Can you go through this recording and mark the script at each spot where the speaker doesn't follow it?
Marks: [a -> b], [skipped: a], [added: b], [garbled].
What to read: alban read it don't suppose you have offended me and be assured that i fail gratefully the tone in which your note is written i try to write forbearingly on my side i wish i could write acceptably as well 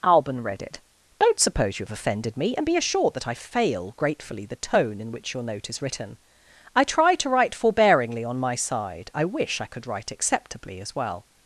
alban read it don't suppose you have offended me and be assured that i fail gratefully the tone in which your note is written i try to write forbearingly on my side i wish i could write acceptably as well